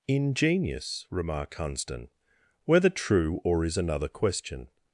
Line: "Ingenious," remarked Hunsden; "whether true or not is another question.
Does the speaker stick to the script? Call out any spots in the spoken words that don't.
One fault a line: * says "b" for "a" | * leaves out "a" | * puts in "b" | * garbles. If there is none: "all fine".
* leaves out "not"